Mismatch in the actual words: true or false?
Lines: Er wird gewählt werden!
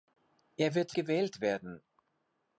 false